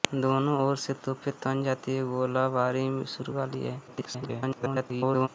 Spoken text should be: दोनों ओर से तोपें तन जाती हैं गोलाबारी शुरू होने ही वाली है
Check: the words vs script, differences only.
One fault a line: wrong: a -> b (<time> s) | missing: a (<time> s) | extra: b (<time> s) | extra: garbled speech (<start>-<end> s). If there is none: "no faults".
missing: होने ही (3.3 s)
extra: garbled speech (3.9-5.3 s)